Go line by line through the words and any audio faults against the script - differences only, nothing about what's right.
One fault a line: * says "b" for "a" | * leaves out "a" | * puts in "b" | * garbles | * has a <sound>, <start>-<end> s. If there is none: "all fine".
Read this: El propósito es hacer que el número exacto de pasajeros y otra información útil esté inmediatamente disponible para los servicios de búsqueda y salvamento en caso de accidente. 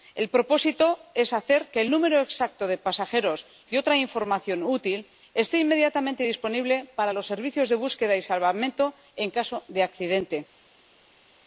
all fine